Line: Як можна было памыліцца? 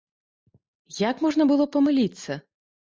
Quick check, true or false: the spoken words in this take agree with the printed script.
true